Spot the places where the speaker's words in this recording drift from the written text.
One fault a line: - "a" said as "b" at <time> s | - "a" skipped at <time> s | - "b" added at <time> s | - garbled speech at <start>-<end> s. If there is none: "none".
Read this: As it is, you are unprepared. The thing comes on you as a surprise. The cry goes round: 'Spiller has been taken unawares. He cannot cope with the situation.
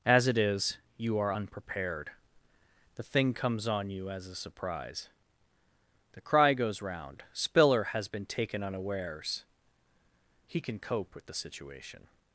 - "cannot" said as "can" at 10.6 s